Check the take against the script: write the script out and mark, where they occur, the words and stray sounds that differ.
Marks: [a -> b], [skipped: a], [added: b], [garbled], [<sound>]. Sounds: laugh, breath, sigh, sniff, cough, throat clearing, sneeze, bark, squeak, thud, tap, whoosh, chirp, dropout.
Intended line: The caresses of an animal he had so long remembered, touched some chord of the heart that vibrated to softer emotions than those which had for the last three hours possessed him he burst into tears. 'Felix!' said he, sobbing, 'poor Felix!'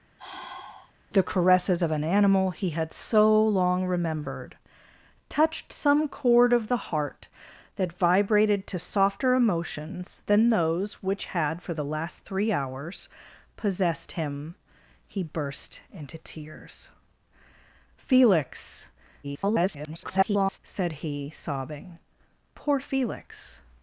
[sigh] The caresses of an animal he had so long remembered, touched some chord of the heart that vibrated to softer emotions than those which had for the last three hours possessed him he burst into tears. 'Felix!' [garbled] said he, sobbing, 'poor Felix!'